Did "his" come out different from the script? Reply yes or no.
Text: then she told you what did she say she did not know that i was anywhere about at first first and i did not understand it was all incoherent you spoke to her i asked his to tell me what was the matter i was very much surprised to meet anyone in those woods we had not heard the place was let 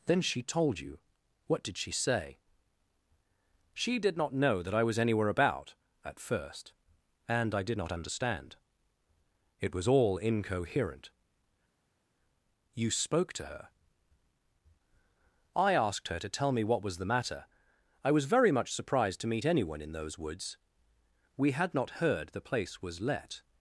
yes